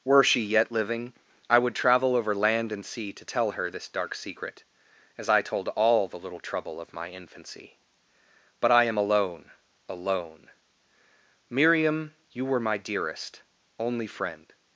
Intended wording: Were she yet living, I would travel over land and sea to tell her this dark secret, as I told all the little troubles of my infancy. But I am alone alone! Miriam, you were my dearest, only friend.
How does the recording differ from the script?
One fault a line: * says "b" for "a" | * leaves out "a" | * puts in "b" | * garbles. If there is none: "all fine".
* says "trouble" for "troubles"